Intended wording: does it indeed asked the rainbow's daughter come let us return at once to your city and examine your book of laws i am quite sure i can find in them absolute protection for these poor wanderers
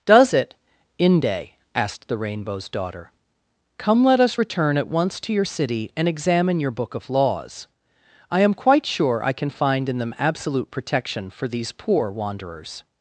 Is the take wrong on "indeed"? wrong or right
wrong